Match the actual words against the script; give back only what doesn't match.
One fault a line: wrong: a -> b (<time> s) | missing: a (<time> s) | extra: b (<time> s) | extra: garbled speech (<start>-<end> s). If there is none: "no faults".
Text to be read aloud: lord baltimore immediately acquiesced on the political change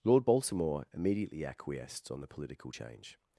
no faults